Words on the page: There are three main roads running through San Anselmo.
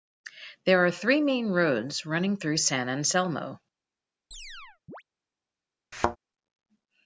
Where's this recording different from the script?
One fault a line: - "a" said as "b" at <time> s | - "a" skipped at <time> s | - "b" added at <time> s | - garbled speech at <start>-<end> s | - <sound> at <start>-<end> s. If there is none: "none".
- chirp at 4.3-5.0 s
- thud at 5.9-6.2 s